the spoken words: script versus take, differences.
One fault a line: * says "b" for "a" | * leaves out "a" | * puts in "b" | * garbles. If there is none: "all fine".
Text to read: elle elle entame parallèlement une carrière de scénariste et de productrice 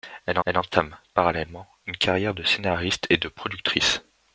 all fine